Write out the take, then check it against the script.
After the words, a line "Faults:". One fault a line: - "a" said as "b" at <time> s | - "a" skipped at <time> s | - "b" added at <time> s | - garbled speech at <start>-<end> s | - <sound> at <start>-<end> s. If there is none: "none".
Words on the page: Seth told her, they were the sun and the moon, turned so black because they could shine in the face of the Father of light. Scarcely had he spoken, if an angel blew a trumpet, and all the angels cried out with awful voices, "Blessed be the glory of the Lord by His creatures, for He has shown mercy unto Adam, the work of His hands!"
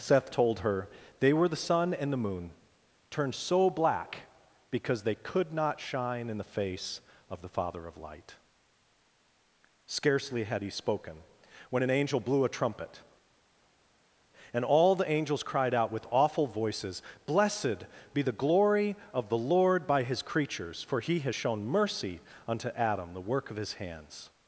Seth told her, they were the sun and the moon, turned so black because they could not shine in the face of the Father of light. Scarcely had he spoken, when an angel blew a trumpet, and all the angels cried out with awful voices, "Blessed be the glory of the Lord by His creatures, for He has shown mercy unto Adam, the work of His hands!"
Faults:
- "not" added at 5.5 s
- "if" said as "when" at 11.7 s